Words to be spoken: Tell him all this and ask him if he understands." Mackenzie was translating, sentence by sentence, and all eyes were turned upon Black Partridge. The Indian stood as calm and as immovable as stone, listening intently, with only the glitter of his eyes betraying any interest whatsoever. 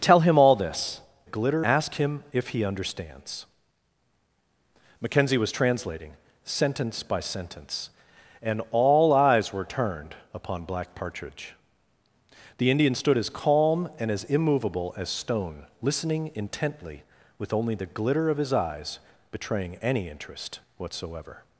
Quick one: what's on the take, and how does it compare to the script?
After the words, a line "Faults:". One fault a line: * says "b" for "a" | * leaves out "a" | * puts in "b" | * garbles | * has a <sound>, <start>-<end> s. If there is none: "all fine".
Tell him all this glitter ask him if he understands." Mackenzie was translating, sentence by sentence, and all eyes were turned upon Black Partridge. The Indian stood as calm and as immovable as stone, listening intently, with only the glitter of his eyes betraying any interest whatsoever.
Faults:
* says "glitter" for "and"